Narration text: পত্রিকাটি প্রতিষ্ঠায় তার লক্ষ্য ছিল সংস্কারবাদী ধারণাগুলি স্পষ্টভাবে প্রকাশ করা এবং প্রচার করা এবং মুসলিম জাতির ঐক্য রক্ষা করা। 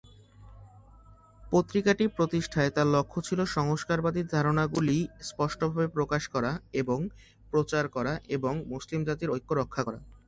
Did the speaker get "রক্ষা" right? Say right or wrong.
right